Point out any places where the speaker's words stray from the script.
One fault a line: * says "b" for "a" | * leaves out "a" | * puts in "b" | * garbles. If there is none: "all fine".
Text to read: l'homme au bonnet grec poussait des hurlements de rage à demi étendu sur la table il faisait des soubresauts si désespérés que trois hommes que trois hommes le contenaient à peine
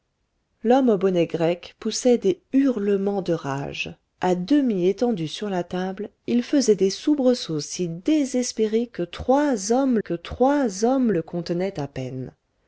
all fine